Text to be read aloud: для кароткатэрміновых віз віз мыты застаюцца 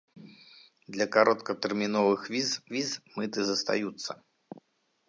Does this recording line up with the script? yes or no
yes